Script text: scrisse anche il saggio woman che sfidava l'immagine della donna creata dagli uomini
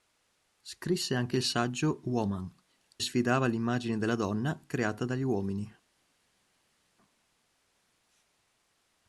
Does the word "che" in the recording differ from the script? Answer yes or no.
yes